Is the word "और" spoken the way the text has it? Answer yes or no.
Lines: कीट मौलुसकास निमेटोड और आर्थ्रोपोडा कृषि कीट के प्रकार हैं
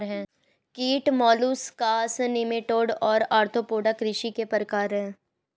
yes